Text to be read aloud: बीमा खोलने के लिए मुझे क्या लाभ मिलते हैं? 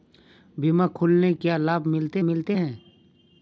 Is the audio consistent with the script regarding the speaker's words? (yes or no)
no